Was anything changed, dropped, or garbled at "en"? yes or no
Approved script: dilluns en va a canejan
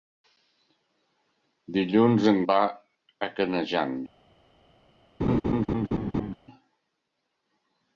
no